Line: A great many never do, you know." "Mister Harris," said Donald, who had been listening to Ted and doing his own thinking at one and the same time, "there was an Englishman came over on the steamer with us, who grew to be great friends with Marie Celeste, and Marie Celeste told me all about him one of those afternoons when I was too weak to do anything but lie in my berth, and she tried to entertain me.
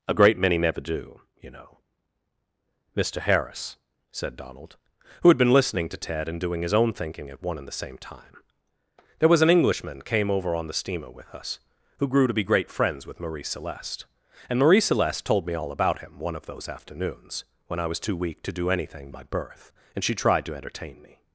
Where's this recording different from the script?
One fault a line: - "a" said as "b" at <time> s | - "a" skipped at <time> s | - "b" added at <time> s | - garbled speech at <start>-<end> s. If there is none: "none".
- "but lie in" skipped at 19.1 s